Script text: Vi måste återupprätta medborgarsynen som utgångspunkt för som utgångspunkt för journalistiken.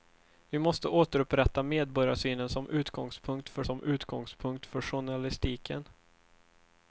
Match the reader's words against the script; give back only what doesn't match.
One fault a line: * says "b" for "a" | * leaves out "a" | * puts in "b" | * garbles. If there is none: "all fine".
all fine